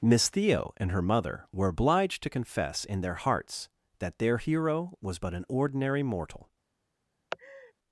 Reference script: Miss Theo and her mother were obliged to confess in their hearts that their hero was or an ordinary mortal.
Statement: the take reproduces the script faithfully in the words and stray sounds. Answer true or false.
false